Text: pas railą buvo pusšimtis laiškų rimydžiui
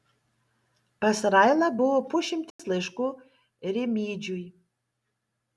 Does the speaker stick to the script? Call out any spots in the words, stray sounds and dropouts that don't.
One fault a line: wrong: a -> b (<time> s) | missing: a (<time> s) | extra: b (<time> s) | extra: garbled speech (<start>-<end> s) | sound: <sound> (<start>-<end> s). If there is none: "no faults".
sound: dropout (2.5-2.6 s)